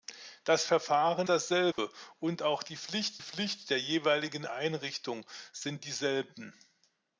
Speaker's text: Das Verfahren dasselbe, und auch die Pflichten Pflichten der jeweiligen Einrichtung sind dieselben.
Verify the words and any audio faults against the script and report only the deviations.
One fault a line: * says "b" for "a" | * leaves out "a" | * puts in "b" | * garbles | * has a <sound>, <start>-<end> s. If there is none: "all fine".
* has a dropout, 1.7-1.8 s